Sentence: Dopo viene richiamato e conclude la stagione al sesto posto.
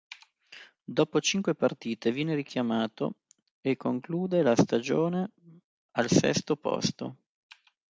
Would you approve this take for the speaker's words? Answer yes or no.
no